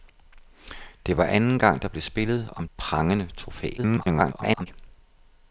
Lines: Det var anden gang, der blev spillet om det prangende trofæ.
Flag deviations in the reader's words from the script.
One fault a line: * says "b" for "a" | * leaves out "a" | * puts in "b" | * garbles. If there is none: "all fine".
* leaves out "det"
* garbles